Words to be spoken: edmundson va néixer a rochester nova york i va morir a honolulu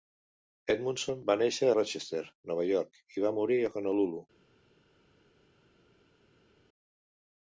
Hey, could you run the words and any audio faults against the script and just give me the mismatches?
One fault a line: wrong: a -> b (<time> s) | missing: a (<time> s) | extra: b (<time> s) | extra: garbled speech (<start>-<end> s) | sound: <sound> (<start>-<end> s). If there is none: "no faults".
missing: a (1.7 s)